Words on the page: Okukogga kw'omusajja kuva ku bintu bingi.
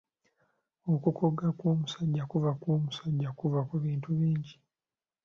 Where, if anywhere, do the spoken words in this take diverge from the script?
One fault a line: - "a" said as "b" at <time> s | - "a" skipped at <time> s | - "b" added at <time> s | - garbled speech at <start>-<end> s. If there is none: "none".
- "kw'omusajja kuva" added at 2.6 s